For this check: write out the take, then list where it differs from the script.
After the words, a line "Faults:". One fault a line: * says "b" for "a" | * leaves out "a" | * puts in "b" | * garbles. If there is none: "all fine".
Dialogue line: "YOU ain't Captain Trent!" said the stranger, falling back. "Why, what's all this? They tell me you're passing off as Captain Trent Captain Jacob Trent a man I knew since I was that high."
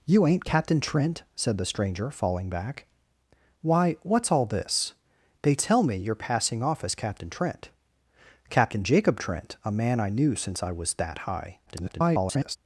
"YOU ain't Captain Trent!" said the stranger, falling back. "Why, what's all this? They tell me you're passing off as Captain Trent Captain Jacob Trent a man I knew since I was that high." [garbled]
Faults:
* garbles